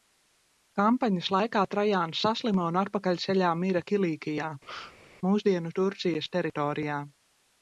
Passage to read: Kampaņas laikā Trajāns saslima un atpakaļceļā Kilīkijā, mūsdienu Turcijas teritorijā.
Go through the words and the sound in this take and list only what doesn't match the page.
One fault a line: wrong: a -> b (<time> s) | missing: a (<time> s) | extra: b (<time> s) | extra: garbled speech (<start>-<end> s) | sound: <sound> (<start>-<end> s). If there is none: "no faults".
extra: mira (3.7 s)
sound: sneeze (4.6-5.1 s)